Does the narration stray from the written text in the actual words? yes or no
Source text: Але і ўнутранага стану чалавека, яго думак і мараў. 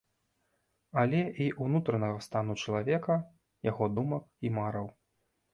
no